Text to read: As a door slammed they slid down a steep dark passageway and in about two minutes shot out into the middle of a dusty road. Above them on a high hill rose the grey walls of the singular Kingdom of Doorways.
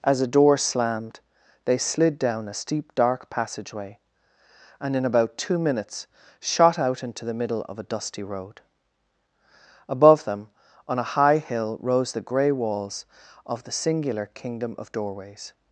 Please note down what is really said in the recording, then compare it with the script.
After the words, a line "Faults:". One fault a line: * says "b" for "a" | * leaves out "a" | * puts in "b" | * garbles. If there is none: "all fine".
As a door slammed they slid down a steep dark passageway and in about two minutes shot out into the middle of a dusty road. Above them on a high hill rose the grey walls of the singular Kingdom of Doorways.
Faults:
all fine